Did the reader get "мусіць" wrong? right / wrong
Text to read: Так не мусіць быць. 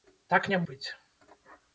wrong